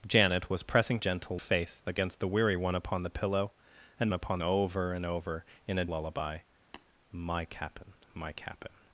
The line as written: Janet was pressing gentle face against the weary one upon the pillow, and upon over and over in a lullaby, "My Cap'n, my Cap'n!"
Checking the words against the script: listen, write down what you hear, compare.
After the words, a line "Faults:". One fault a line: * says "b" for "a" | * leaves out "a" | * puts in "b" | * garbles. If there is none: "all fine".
Janet was pressing gentle face against the weary one upon the pillow, and upon over and over in a lullaby, "My Cap'n, my Cap'n!"
Faults:
all fine